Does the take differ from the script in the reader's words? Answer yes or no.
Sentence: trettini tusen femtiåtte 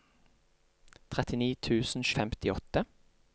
no